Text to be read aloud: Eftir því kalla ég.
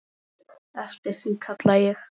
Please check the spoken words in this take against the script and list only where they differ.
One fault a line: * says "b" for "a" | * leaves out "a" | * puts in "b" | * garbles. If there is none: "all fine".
all fine